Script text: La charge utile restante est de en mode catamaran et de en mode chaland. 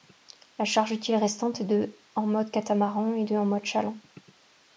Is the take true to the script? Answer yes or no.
yes